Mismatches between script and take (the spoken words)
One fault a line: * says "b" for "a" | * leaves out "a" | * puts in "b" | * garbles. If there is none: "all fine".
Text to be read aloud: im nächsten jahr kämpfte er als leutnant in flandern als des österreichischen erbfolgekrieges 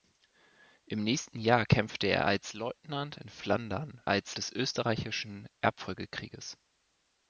all fine